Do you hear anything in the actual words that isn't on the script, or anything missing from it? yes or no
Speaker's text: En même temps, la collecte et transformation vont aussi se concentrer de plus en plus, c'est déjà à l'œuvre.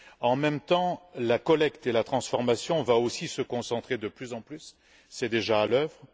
yes